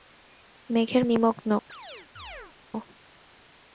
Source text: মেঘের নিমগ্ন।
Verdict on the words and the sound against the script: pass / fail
fail